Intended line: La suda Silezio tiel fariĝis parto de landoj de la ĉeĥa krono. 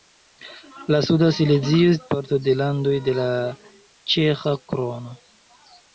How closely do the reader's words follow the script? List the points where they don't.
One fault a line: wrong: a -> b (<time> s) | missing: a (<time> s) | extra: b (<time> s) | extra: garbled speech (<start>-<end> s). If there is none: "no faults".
missing: tiel fariĝis (1.9 s)